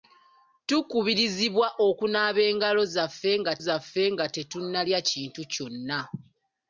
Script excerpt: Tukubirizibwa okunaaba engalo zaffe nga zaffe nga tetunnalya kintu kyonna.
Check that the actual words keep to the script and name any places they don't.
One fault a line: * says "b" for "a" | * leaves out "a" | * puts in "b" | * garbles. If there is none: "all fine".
all fine